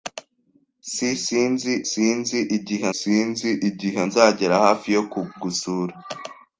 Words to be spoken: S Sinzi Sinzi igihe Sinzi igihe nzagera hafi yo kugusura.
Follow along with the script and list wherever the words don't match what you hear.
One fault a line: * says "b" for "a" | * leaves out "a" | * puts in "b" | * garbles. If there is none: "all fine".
all fine